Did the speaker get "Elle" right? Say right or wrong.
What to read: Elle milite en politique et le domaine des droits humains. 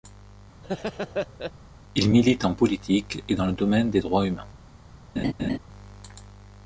wrong